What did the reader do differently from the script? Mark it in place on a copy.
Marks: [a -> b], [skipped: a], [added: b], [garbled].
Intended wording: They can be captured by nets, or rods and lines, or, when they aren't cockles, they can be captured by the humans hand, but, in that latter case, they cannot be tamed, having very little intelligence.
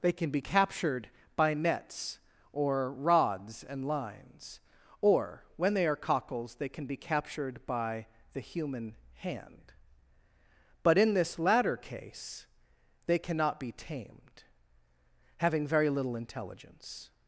They can be captured by nets, or rods and lines, or, when they [aren't -> are] cockles, they can be captured by the [humans -> human] hand, but, in [that -> this] latter case, they cannot be tamed, having very little intelligence.